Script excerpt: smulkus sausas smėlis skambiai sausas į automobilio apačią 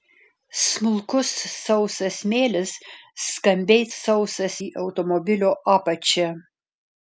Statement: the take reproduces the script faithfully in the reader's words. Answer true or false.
true